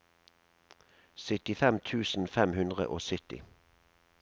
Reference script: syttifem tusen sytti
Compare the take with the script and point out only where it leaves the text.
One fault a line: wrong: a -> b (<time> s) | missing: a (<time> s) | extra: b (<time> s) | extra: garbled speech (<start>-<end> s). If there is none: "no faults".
extra: fem hundre og (2.4 s)